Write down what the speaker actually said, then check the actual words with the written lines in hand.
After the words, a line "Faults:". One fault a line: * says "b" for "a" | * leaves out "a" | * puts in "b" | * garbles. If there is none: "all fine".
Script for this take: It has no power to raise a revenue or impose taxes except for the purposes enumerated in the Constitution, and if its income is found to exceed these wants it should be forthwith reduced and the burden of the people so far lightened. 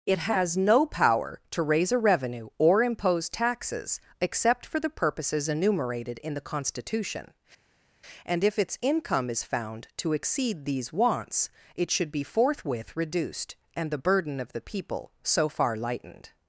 It has no power to raise a revenue or impose taxes except for the purposes enumerated in the Constitution, and if its income is found to exceed these wants it should be forthwith reduced and the burden of the people so far lightened.
Faults:
all fine